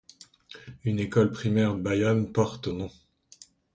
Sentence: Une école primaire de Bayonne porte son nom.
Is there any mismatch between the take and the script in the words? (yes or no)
yes